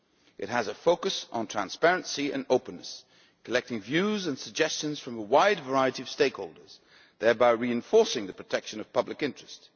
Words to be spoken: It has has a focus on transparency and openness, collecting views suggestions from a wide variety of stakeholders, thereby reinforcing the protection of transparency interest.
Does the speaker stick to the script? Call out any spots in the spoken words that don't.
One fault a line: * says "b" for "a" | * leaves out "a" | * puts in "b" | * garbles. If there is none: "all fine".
* leaves out "has"
* puts in "and"
* says "public" for "transparency"